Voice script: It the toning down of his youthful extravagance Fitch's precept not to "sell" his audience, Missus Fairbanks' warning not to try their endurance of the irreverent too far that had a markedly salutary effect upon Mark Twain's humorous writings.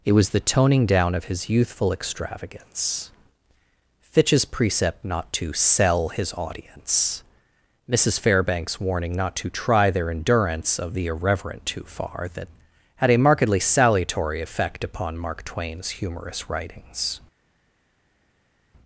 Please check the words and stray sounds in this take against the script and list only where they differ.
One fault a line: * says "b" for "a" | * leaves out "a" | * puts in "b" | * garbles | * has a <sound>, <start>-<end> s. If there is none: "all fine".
* puts in "was"